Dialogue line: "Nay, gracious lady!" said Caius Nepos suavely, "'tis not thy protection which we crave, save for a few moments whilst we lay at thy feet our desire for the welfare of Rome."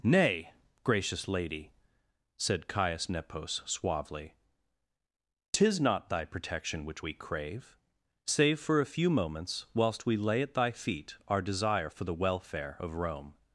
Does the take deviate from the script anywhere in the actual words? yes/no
no